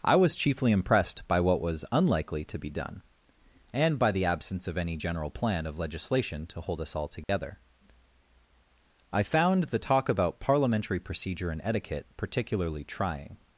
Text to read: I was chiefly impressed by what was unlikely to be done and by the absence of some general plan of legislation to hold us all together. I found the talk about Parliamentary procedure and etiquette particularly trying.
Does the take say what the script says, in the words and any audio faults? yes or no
no